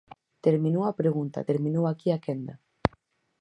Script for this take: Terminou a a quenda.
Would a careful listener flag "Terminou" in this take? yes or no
no